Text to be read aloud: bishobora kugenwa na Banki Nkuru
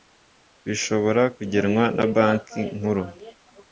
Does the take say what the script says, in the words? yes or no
yes